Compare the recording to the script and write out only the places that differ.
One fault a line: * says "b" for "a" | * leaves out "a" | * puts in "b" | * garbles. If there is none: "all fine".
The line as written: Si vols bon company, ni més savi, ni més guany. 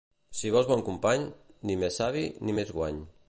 all fine